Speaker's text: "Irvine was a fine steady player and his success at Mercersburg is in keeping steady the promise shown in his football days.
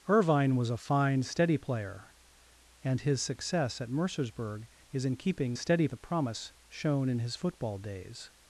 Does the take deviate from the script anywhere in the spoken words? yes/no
no